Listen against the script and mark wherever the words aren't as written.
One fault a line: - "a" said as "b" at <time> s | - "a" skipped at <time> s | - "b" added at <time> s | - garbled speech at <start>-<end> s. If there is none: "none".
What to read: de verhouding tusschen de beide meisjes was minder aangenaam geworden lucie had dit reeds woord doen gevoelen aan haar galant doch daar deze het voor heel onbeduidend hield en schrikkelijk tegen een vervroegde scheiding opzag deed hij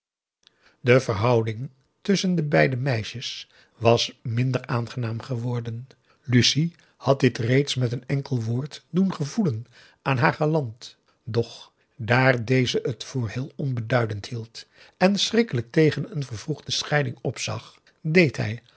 - "met een enkel" added at 7.8 s